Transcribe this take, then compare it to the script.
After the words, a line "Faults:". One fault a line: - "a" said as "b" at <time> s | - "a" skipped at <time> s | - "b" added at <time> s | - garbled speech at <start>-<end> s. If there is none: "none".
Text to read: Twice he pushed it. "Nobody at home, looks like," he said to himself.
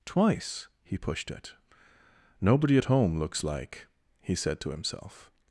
Twice he pushed it. "Nobody at home, looks like," he said to himself.
Faults:
none